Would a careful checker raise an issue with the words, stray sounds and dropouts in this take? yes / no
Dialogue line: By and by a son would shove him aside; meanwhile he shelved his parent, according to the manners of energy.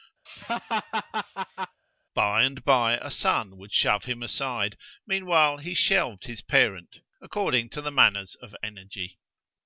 yes